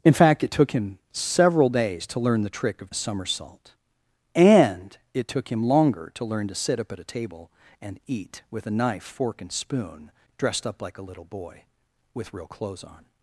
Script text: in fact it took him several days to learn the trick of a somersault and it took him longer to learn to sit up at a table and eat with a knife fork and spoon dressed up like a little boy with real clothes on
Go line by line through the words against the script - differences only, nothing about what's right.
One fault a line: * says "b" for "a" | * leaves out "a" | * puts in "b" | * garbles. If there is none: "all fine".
all fine